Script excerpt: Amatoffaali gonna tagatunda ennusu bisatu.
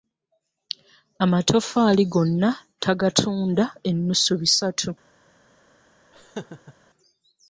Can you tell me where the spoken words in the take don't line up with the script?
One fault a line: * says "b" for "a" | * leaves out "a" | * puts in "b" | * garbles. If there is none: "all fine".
all fine